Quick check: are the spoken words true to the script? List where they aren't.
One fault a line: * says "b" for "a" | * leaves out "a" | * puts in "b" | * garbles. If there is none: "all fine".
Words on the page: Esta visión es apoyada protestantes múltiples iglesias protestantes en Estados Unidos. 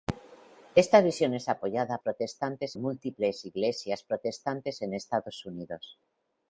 all fine